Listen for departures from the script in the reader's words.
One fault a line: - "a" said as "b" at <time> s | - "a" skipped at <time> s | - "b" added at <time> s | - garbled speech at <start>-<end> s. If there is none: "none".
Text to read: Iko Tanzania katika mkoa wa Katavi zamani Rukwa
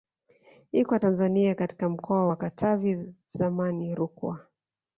none